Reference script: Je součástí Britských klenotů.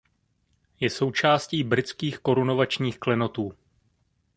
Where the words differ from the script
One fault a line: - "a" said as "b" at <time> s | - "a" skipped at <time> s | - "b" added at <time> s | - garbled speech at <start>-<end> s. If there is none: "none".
- "korunovačních" added at 2.2 s